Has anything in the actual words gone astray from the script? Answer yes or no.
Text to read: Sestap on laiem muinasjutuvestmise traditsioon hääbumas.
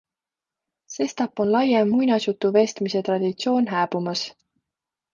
no